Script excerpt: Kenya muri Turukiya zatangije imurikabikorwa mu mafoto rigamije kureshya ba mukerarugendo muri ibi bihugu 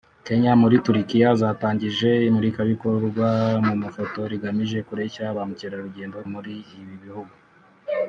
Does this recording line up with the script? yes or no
yes